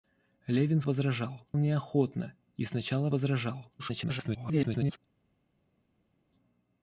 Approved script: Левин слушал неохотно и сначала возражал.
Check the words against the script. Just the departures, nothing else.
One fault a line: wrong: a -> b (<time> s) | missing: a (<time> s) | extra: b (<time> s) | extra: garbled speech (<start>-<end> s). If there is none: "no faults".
wrong: слушал -> возражал (0.8 s)
extra: garbled speech (3.8-5.0 s)